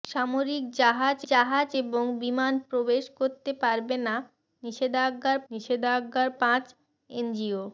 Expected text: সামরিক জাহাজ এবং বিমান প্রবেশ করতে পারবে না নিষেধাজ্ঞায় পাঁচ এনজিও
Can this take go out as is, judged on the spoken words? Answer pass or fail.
fail